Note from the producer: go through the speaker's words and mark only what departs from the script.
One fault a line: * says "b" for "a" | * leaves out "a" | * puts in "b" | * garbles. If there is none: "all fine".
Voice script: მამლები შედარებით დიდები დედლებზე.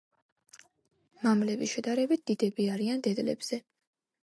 * puts in "არიან"